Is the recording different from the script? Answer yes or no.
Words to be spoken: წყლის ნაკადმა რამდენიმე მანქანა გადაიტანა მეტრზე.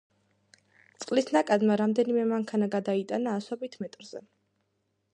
yes